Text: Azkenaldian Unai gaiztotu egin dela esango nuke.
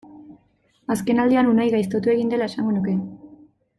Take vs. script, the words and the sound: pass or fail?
pass